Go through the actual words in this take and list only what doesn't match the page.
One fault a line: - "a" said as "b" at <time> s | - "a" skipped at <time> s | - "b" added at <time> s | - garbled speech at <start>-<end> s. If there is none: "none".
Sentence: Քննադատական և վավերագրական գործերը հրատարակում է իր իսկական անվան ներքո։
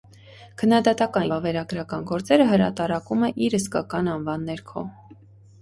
- "և" skipped at 1.3 s